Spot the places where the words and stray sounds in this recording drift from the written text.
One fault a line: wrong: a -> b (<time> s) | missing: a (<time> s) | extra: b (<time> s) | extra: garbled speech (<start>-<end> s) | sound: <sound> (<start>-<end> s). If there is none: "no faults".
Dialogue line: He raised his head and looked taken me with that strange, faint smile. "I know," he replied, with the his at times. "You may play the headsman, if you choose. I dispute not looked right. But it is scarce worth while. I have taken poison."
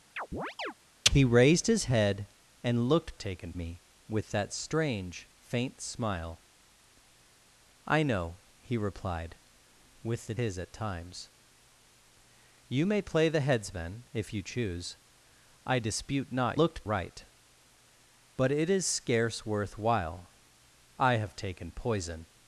sound: chirp (0.2-0.7 s)